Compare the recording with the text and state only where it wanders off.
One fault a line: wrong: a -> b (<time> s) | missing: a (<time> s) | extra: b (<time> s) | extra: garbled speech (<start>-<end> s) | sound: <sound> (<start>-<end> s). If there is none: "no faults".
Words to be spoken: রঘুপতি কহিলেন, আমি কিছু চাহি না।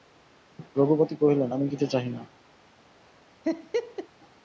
sound: laugh (3.4-4.1 s)